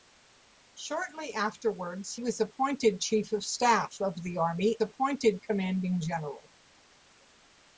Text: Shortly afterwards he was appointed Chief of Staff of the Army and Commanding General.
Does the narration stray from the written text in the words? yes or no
yes